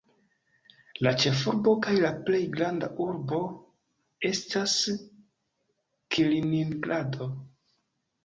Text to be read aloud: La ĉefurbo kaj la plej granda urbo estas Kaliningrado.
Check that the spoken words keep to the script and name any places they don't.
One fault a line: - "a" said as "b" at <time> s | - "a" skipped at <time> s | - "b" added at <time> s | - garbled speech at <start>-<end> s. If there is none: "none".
none